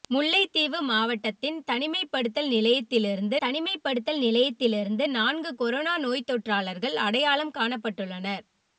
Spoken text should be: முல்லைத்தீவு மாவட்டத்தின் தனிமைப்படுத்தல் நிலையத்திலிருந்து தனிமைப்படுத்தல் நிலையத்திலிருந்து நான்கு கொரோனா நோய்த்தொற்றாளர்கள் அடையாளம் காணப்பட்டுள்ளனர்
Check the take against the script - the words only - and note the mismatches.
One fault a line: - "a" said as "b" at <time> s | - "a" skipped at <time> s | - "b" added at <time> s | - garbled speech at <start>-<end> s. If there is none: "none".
none